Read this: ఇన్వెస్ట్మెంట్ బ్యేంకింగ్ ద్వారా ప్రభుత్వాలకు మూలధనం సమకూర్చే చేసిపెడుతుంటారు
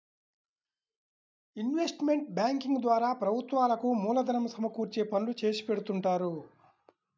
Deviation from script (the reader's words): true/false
true